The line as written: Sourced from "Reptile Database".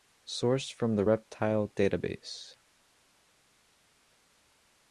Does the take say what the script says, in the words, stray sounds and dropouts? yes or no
no